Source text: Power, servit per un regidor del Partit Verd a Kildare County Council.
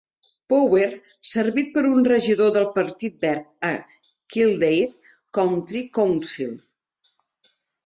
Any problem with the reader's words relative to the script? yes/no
no